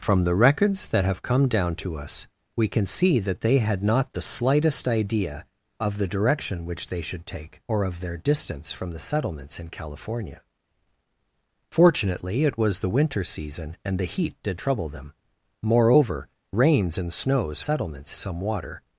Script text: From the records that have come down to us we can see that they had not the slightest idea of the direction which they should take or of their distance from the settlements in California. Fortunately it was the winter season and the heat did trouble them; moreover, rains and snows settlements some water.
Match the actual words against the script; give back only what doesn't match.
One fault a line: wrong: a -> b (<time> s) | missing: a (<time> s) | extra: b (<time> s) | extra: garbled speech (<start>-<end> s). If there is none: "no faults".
no faults